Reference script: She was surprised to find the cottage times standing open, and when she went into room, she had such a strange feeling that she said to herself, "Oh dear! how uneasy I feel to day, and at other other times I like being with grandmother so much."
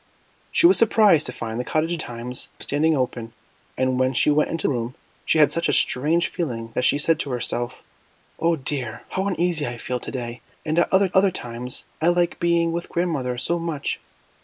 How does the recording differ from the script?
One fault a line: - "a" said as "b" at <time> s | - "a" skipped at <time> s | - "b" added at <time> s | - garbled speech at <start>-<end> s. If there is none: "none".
none